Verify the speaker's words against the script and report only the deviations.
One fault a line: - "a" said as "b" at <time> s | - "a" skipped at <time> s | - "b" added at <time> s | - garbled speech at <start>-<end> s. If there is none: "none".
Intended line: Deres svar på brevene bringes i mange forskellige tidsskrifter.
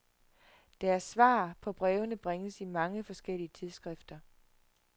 none